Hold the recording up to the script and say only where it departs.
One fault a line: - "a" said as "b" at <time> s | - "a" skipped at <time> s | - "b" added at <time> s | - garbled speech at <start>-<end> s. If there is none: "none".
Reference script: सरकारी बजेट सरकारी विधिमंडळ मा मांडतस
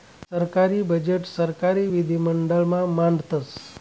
none